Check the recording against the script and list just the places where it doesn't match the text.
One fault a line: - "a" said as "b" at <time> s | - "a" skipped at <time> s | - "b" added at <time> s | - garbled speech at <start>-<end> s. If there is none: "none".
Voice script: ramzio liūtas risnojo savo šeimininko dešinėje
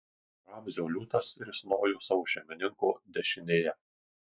none